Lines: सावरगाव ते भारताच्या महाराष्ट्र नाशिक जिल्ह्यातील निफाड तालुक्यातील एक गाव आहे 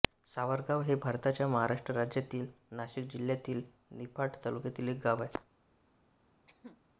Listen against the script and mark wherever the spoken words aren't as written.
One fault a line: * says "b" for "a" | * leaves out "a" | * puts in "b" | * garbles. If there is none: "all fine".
* says "हे" for "ते"
* puts in "राज्यातील"